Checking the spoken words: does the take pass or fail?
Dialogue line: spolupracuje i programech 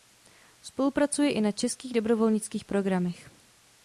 fail